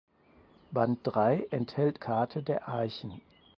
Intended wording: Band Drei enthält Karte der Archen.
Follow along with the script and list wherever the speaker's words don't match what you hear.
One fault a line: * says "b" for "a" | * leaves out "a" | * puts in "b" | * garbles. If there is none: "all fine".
all fine